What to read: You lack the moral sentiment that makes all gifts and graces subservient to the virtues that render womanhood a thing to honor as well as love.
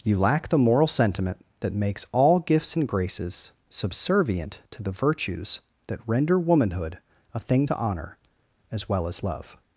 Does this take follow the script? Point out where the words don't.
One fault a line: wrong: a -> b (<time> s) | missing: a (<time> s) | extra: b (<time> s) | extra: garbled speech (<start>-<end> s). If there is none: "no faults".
no faults